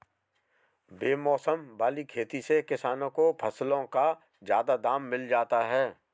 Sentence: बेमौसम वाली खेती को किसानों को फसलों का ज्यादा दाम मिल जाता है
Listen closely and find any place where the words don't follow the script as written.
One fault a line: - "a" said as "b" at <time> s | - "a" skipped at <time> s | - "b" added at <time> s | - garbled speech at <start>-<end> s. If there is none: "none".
- "को" said as "से" at 2.4 s